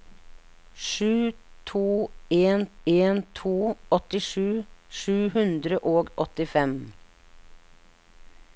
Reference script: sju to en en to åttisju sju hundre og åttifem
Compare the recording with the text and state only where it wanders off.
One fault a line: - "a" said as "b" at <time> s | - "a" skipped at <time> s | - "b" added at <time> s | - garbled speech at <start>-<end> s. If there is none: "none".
none